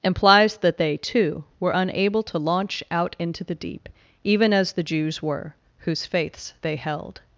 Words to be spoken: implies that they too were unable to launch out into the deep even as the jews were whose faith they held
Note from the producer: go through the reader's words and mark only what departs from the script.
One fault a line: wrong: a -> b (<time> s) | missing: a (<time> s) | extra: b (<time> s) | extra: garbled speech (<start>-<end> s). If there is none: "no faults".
wrong: faith -> faiths (6.1 s)